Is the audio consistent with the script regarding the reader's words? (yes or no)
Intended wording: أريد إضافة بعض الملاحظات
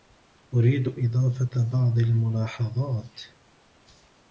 yes